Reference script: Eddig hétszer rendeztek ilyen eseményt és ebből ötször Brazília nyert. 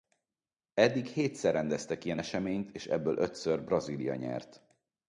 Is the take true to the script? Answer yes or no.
yes